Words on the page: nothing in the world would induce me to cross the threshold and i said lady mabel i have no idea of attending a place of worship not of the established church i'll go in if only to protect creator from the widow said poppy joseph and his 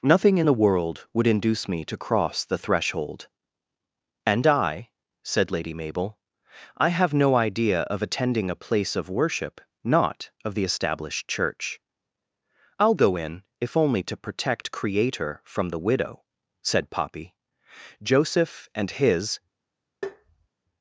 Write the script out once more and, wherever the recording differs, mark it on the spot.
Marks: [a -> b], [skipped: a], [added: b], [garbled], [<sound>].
nothing in the world would induce me to cross the threshold and i said lady mabel i have no idea of attending a place of worship not of the established church i'll go in if only to protect creator from the widow said poppy joseph and his [tap]